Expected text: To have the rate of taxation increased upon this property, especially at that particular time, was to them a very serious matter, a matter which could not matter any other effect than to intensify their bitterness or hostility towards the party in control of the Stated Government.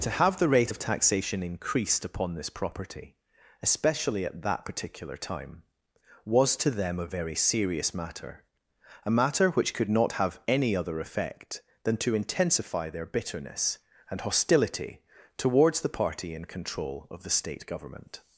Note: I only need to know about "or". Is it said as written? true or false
false